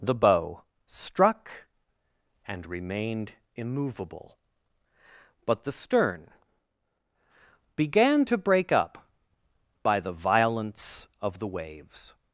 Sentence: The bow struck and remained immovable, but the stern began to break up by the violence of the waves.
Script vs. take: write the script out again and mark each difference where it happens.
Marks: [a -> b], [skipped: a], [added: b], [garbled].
The bow struck and remained immovable, but the stern began to break up by the violence of the waves.